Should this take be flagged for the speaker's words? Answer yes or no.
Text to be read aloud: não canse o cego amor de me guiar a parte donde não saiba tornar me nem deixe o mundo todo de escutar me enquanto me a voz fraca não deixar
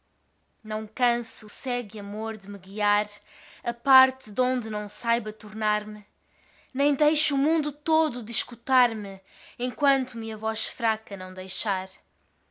no